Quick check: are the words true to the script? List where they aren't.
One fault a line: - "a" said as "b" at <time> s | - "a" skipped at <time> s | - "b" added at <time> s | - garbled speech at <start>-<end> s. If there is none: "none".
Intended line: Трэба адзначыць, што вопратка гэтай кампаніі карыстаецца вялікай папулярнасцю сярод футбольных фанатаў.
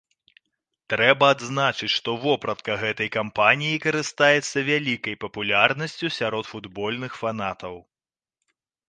none